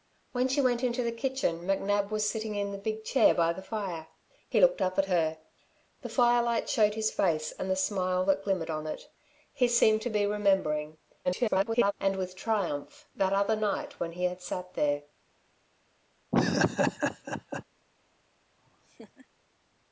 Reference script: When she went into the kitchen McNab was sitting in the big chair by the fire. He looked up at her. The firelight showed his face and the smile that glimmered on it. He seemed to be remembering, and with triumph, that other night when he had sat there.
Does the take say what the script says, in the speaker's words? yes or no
no